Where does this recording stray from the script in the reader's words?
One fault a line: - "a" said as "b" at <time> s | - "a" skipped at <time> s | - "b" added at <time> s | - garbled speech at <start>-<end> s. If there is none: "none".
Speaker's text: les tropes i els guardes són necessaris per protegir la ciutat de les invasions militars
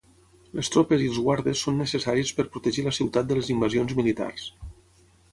none